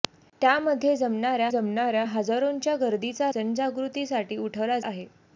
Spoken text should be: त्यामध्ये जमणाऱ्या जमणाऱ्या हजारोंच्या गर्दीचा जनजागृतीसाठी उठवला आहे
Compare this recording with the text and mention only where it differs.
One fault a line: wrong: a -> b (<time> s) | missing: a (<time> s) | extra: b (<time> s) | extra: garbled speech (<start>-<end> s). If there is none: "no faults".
no faults